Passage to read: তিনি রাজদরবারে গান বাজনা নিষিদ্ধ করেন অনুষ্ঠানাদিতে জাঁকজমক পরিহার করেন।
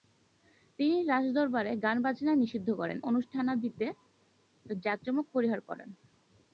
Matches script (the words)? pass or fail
pass